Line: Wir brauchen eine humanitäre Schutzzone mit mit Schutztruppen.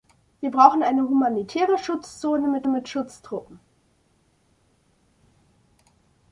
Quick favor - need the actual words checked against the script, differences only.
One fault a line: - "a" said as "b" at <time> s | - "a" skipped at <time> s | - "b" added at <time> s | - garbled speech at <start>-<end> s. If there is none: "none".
none